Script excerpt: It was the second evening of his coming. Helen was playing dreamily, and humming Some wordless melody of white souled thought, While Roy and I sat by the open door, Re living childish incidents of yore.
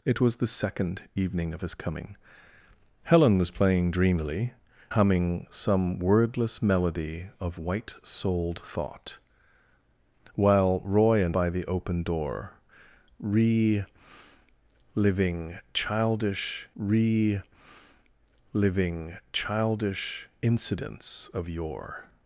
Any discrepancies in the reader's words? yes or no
yes